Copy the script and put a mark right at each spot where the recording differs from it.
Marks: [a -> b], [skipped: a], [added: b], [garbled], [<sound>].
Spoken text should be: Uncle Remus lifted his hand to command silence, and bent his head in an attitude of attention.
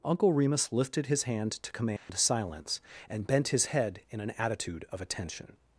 Uncle Remus lifted his hand to command [dropout] silence, and bent his head in an attitude of attention.